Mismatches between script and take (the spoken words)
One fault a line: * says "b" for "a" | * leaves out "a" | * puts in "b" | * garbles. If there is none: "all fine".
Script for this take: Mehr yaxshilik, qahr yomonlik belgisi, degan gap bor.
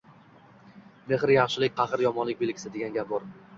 all fine